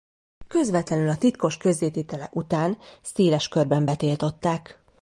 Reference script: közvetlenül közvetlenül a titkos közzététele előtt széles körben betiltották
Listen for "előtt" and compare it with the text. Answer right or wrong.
wrong